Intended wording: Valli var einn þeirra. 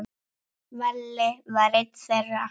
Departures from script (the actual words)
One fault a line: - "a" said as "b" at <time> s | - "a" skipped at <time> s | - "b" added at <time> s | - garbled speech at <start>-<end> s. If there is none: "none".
none